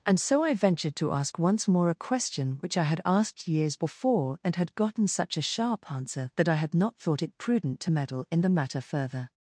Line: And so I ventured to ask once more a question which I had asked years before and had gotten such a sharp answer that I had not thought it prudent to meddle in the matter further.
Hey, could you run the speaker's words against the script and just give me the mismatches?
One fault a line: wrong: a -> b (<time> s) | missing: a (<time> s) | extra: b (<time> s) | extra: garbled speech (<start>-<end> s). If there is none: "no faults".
no faults